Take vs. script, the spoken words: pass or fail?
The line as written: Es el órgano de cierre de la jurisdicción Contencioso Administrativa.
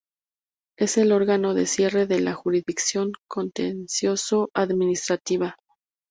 pass